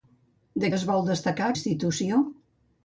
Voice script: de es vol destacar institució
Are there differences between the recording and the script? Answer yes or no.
no